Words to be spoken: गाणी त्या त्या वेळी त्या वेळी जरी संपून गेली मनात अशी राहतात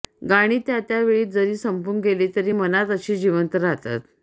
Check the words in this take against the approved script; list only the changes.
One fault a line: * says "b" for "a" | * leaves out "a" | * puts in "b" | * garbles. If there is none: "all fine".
* leaves out "त्या वेळी"
* puts in "तरी"
* puts in "जिवंत"